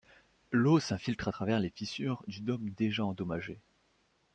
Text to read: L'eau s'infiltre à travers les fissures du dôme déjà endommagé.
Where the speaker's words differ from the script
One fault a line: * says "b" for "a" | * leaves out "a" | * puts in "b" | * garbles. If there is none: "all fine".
all fine